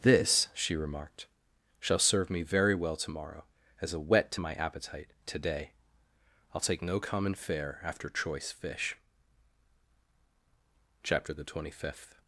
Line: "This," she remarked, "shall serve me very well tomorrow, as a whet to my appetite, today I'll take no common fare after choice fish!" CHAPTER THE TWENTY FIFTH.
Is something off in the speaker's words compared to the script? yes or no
no